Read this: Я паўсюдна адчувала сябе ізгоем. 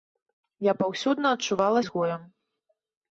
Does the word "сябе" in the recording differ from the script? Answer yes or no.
yes